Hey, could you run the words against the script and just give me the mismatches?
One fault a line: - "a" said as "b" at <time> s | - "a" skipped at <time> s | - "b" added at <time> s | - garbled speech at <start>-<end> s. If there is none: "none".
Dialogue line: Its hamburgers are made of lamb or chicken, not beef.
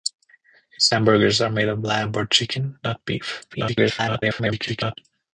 - garbled speech at 3.5-5.0 s